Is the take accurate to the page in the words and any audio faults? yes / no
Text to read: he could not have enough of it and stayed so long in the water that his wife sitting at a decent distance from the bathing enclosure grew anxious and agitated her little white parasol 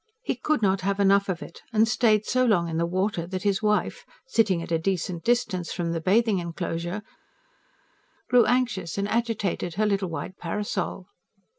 yes